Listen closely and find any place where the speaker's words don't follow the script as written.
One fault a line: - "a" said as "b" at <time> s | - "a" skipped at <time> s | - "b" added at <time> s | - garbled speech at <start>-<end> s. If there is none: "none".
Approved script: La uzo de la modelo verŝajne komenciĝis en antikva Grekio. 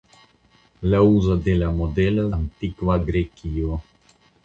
- "verŝajne komenciĝis en" skipped at 2.2 s